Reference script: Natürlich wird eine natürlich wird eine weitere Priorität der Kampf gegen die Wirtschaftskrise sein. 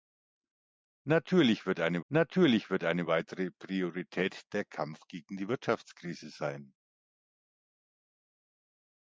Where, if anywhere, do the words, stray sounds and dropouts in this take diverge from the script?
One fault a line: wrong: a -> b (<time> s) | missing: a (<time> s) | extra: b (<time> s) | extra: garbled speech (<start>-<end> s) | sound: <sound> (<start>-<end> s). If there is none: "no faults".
no faults